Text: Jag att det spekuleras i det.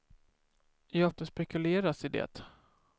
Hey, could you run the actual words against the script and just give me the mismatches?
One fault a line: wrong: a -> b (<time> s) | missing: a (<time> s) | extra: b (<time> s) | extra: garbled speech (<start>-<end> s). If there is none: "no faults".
no faults